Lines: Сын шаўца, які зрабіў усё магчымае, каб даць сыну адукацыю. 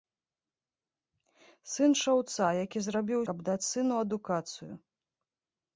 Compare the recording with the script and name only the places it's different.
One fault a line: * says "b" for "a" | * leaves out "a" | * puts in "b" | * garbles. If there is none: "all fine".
* leaves out "усё магчымае"